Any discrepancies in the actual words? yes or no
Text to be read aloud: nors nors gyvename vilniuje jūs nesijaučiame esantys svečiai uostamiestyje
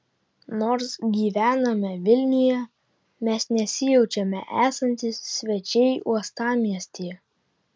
yes